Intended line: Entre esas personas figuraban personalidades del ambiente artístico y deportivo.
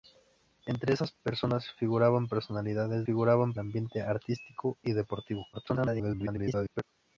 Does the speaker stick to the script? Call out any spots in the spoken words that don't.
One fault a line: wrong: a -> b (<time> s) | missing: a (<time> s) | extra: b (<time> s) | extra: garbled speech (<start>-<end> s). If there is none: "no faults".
wrong: del -> figuraban (3.0 s)
extra: garbled speech (5.5-6.8 s)